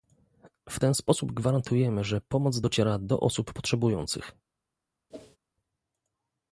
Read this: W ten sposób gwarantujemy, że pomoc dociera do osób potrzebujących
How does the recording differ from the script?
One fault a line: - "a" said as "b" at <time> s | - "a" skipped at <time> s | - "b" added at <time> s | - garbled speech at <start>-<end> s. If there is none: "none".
none